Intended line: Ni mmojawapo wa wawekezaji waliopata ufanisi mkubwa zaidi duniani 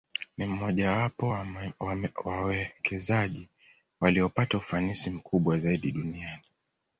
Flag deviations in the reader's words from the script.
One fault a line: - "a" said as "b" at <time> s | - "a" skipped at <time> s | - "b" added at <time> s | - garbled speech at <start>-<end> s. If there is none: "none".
none